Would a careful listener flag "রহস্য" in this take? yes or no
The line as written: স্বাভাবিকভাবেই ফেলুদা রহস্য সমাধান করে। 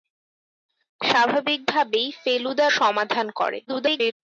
yes